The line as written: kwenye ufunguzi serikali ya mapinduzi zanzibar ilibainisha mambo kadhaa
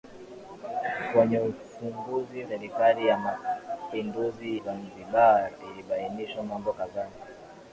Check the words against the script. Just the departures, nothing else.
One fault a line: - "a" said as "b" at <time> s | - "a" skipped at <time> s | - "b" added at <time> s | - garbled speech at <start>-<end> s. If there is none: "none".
none